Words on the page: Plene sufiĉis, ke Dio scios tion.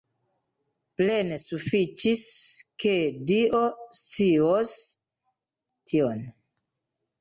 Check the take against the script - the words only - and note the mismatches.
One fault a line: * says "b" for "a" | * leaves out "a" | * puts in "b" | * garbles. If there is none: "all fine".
all fine